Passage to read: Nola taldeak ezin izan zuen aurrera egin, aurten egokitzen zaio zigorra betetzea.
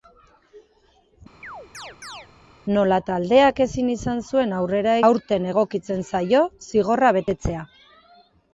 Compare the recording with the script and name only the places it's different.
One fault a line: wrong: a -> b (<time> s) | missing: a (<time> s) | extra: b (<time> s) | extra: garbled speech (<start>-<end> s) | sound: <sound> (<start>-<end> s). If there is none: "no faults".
sound: chirp (1.4-2.3 s)
missing: egin (4.9 s)